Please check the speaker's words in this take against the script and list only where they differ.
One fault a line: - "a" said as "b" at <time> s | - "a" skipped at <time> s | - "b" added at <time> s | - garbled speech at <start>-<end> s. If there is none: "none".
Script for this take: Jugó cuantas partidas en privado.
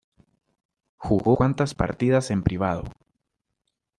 none